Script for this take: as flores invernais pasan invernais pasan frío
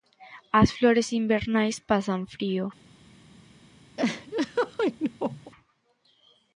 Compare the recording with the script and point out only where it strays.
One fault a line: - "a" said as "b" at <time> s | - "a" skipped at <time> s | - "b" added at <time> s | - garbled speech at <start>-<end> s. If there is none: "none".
- "invernais pasan" skipped at 2.2 s